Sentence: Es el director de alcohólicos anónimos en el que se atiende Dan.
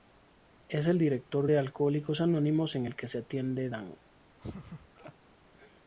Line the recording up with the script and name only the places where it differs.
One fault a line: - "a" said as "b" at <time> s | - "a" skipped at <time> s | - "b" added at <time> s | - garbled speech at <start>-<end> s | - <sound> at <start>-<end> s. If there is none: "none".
- laugh at 4.4-5.1 s